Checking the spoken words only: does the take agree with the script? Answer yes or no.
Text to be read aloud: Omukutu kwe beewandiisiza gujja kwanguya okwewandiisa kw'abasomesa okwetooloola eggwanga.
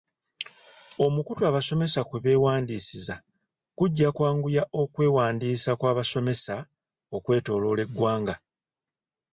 no